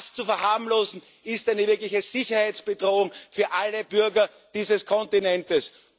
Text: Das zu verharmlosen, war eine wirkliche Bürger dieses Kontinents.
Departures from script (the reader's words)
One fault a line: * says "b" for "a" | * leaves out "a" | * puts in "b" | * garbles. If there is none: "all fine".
* says "ist" for "war"
* puts in "Sicherheitsbedrohung für alle"